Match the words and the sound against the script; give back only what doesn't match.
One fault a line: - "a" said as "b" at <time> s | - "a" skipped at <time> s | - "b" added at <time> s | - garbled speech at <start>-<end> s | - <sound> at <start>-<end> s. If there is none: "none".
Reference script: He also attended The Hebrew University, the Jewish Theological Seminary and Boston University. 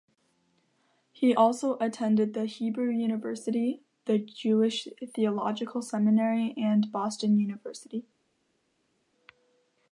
none